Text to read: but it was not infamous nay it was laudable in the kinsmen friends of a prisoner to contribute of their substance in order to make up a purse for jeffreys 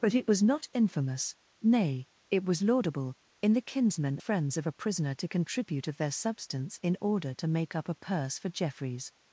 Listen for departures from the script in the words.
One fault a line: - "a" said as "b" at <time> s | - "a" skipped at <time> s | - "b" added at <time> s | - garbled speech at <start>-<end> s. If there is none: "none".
none